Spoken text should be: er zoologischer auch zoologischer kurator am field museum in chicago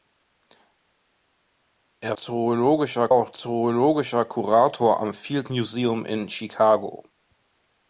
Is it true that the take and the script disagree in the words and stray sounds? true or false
false